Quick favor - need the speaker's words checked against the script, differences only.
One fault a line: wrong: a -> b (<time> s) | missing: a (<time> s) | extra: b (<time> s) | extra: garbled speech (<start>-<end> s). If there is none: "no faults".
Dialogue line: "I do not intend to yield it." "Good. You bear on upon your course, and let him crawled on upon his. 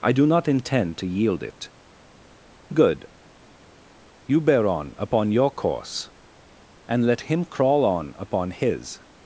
wrong: crawled -> crawl (7.5 s)